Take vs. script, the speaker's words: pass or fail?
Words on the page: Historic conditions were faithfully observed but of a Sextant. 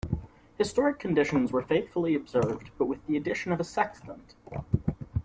fail